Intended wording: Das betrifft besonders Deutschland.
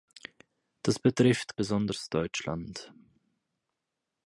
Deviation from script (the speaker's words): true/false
false